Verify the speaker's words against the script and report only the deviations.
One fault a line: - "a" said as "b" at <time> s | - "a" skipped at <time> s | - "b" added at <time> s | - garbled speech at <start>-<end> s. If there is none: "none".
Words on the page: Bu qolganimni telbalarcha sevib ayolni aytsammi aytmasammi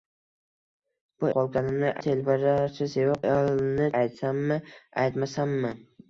none